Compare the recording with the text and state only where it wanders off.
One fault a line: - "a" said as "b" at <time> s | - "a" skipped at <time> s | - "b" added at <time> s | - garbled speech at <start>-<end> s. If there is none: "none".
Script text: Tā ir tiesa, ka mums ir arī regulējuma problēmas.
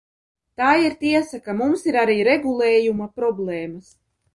none